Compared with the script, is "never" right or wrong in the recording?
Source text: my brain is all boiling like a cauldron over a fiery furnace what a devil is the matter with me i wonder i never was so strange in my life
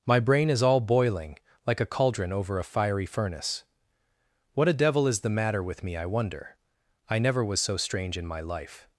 right